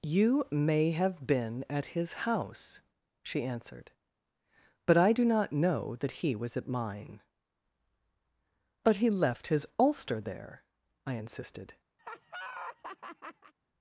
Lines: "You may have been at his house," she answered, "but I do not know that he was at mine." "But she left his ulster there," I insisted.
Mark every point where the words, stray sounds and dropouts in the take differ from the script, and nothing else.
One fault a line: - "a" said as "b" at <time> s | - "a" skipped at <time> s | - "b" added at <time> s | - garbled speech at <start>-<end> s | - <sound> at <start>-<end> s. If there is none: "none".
- "she" said as "he" at 8.9 s
- laugh at 12.0-13.5 s